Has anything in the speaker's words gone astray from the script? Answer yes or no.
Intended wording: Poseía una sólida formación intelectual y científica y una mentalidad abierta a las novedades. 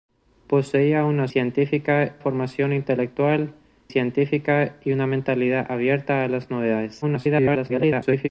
yes